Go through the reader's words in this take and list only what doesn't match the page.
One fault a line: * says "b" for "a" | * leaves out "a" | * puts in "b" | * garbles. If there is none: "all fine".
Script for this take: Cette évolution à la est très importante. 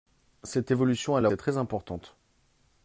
all fine